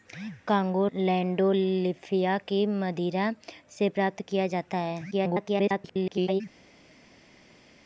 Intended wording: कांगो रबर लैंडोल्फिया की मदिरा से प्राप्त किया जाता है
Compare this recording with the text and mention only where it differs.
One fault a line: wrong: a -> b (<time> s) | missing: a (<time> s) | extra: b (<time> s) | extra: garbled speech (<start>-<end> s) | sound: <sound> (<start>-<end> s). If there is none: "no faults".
missing: रबर (0.9 s)
extra: garbled speech (5.1-6.4 s)